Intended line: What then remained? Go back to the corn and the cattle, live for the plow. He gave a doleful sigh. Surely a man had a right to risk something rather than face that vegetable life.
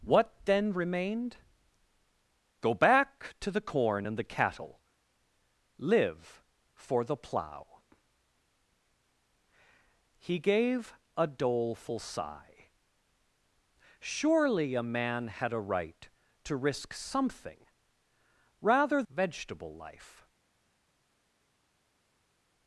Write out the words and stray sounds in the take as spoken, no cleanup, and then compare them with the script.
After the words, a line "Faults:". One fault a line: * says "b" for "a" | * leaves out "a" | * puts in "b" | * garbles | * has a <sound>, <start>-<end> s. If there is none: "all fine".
What then remained? Go back to the corn and the cattle, live for the plow. He gave a doleful sigh. Surely a man had a right to risk something rather vegetable life.
Faults:
* leaves out "than face that"